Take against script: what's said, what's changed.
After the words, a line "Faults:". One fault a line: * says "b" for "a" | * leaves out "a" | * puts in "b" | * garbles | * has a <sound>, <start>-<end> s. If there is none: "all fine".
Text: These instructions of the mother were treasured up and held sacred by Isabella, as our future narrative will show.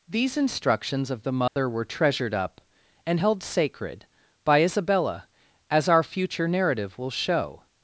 These instructions of the mother were treasured up and held sacred by Isabella, as our future narrative will show.
Faults:
* has a dropout, 1.5-1.6 s